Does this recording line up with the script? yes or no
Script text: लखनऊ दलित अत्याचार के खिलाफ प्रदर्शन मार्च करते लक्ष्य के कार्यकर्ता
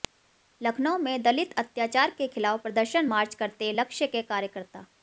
no